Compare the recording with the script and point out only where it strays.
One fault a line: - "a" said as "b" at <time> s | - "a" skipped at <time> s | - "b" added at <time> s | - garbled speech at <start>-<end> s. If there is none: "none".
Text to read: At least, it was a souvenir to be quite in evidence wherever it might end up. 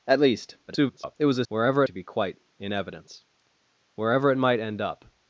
- garbled speech at 0.7-1.2 s
- "souvenir" said as "wherever" at 1.5 s